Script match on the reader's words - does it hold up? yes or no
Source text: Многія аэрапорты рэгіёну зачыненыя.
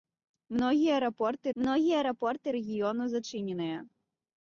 no